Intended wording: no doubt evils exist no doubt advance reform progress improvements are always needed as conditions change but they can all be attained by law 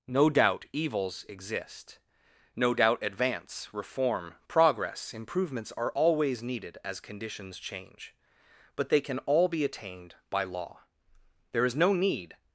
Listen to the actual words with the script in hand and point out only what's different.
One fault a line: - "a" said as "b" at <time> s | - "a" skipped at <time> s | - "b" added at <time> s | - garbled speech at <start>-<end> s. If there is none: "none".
- "there is no need" added at 11.5 s